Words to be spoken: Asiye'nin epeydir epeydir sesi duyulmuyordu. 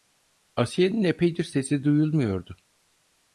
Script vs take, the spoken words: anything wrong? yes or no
yes